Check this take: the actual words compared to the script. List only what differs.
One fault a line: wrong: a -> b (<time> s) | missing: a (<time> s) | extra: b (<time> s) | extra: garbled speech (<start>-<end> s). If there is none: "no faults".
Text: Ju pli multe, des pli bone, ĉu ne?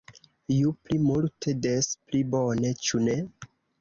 no faults